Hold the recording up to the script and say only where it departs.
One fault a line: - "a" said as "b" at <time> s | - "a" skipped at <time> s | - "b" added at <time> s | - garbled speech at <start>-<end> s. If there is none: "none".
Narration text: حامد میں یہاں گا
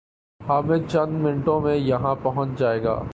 - "چند منٹوں" added at 0.9 s
- "پہنچ جائے" added at 2.2 s